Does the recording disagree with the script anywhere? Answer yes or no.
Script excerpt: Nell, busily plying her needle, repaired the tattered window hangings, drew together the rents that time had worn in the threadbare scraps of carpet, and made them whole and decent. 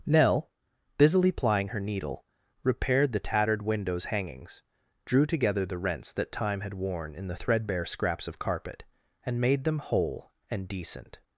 yes